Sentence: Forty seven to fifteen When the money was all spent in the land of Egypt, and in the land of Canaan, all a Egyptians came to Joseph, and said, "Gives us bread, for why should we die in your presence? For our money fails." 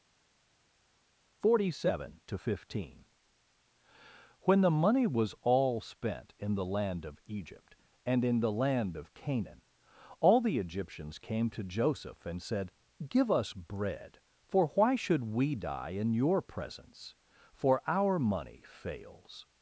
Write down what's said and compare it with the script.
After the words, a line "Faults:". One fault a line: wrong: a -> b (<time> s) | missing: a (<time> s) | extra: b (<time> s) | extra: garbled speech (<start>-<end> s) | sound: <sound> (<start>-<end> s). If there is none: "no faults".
Forty seven to fifteen When the money was all spent in the land of Egypt, and in the land of Canaan, all the Egyptians came to Joseph, and said, "Give us bread, for why should we die in your presence? For our money fails."
Faults:
wrong: a -> the (10.4 s)
wrong: Gives -> Give (13.1 s)